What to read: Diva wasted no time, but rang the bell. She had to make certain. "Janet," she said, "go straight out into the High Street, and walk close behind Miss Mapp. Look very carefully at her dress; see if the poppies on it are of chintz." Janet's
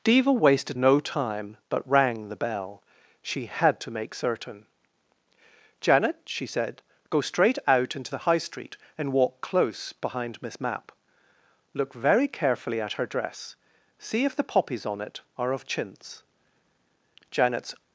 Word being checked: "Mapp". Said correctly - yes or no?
yes